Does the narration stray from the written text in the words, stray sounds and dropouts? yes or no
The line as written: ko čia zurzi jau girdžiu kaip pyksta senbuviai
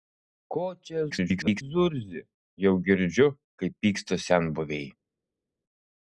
yes